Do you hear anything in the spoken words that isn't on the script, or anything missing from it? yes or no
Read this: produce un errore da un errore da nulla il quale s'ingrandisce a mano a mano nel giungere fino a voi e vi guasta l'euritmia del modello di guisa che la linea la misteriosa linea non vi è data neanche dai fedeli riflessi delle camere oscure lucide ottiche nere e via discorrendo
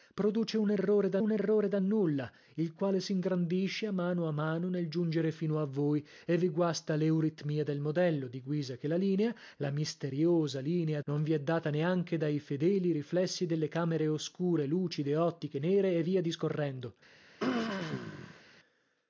no